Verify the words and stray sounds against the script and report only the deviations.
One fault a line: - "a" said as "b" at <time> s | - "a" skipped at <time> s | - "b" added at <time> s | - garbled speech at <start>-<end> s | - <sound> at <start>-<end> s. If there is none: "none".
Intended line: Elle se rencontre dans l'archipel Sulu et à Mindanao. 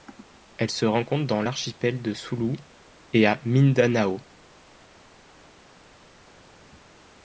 - "de" added at 2.0 s